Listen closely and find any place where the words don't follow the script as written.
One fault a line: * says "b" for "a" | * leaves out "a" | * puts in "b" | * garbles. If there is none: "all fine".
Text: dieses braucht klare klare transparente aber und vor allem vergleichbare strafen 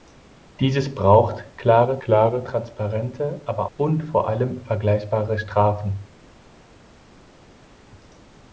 all fine